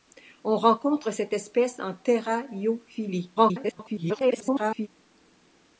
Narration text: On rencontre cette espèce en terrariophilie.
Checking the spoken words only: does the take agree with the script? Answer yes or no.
no